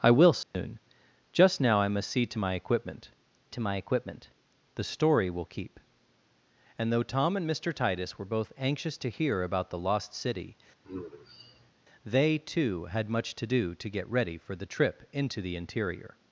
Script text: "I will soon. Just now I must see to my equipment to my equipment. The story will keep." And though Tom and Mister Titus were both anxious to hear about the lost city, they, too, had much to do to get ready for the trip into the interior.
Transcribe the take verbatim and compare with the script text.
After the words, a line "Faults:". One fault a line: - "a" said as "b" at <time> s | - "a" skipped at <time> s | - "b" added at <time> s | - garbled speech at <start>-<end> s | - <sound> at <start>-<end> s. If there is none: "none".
"I will soon. Just now I must see to my equipment to my equipment. The story will keep." And though Tom and Mister Titus were both anxious to hear about the lost city, they, too, had much to do to get ready for the trip into the interior.
Faults:
- dropout at 0.4-0.5 s
- sigh at 10.8-11.7 s